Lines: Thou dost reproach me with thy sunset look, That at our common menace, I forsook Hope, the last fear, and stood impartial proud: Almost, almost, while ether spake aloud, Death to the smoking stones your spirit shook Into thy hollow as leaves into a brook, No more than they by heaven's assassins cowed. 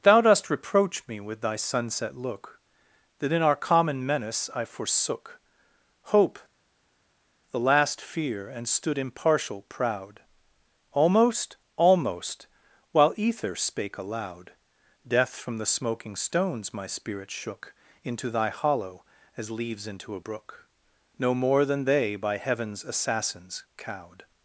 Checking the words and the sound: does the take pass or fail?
fail